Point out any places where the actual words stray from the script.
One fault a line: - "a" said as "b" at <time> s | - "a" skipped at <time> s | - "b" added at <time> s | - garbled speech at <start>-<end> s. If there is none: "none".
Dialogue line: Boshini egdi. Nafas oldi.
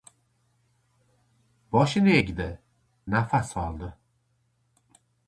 none